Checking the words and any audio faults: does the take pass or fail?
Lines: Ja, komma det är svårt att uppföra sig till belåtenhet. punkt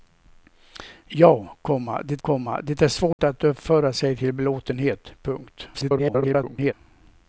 fail